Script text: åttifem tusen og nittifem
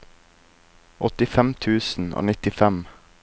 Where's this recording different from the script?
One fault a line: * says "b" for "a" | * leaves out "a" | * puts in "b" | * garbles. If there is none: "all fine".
all fine